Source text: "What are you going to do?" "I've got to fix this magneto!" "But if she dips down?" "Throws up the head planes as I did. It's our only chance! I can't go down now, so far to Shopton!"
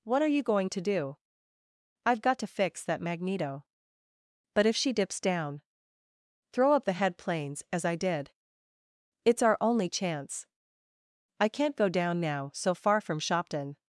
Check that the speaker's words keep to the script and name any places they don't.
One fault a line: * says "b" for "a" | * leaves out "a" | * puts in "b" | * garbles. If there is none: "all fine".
* says "that" for "this"
* says "Throw" for "Throws"
* says "from" for "to"